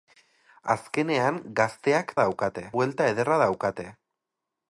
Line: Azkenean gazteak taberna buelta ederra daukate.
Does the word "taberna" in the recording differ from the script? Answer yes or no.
yes